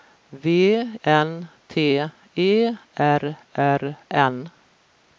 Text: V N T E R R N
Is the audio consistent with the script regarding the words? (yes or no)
yes